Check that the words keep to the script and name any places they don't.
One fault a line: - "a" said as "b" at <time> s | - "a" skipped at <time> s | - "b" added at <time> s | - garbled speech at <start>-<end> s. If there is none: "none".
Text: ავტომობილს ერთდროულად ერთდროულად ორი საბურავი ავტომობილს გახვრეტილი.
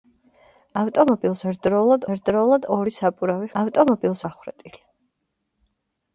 none